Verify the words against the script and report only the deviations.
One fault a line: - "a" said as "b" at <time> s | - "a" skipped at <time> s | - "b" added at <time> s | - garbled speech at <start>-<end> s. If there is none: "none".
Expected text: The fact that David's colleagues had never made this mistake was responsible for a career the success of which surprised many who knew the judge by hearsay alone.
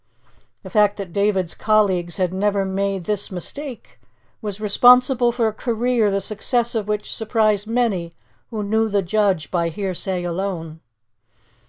none